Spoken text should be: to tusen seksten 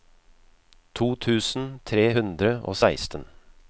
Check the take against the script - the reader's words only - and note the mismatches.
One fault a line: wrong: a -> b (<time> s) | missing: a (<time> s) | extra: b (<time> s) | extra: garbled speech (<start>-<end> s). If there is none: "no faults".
extra: tre hundre og (1.9 s)